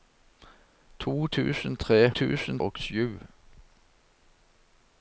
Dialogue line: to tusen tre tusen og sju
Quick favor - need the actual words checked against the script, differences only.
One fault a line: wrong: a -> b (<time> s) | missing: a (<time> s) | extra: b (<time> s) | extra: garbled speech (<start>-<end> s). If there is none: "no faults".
no faults